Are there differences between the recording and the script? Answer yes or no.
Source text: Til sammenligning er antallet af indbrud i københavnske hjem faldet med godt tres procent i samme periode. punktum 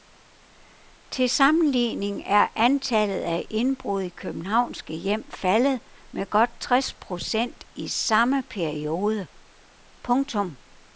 no